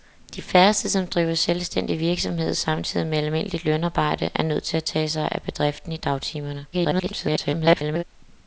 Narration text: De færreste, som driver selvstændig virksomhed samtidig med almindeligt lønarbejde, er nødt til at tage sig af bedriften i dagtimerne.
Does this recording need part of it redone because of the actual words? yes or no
yes